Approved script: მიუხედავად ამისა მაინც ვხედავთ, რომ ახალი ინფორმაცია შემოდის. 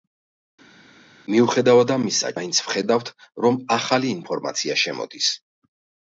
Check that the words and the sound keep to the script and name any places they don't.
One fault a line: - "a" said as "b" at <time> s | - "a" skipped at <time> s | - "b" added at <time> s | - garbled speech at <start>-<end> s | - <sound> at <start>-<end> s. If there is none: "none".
none